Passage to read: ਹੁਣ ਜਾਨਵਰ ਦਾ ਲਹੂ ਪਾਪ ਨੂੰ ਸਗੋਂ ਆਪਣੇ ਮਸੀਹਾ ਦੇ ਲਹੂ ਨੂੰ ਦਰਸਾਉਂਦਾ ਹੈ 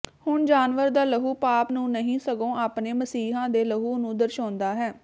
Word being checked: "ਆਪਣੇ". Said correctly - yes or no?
yes